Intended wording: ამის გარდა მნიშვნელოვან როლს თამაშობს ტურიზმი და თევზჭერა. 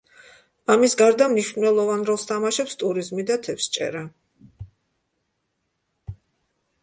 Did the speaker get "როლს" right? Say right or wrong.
right